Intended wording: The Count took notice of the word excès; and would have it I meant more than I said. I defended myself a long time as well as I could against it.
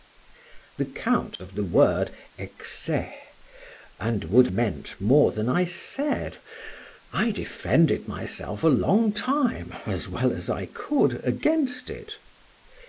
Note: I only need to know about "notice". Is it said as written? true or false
false